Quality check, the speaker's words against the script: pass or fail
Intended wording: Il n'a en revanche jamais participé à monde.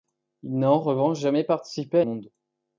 pass